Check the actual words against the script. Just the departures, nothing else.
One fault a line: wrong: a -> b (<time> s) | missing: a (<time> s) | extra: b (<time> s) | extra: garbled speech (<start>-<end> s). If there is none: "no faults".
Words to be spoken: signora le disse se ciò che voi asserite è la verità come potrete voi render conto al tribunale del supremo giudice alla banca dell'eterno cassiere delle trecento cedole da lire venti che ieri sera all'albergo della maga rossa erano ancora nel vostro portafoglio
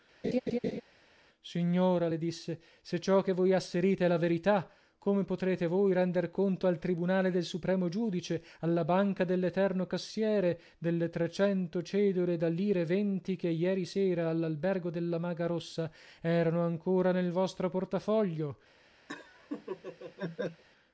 no faults